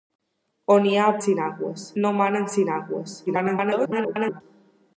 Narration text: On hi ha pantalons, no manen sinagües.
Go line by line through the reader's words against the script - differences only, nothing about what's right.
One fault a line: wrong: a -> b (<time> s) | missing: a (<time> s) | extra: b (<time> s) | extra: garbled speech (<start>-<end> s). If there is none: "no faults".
wrong: pantalons -> sinagües (1.2 s)
extra: garbled speech (3.3-4.4 s)